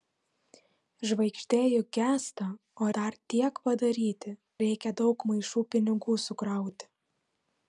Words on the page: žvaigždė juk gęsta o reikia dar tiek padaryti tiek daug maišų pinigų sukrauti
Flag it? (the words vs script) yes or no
yes